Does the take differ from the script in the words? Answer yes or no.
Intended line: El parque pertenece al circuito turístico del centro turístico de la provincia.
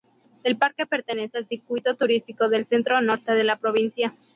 yes